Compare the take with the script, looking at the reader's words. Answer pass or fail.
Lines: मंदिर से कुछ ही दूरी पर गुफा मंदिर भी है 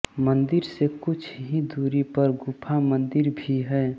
pass